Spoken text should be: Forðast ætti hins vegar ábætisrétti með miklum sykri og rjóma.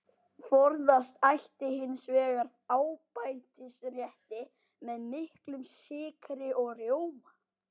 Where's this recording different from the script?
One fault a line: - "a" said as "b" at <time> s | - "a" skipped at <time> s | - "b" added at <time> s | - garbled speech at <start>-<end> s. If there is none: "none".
none